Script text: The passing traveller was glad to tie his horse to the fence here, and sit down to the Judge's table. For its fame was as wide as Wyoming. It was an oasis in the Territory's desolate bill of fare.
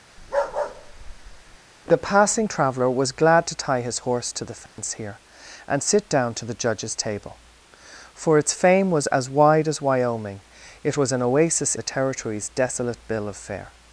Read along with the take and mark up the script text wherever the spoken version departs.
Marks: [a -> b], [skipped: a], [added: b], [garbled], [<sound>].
[bark] The passing traveller was glad to tie his horse to the fence [dropout] here, and sit down to the Judge's table. For its fame was as wide as Wyoming. It was an oasis [skipped: in] the Territory's desolate bill of fare.